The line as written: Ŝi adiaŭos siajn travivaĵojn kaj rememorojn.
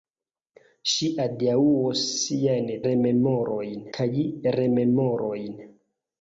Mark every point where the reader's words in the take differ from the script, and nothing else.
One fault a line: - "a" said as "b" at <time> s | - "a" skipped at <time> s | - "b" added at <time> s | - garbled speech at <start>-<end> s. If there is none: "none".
- "travivaĵojn" said as "rememorojn" at 2.9 s